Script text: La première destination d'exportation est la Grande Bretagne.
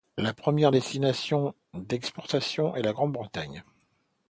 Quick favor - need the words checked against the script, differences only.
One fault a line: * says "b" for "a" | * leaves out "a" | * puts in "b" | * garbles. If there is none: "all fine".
all fine